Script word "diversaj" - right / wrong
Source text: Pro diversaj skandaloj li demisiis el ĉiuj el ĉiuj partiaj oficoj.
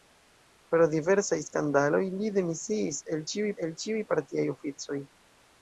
right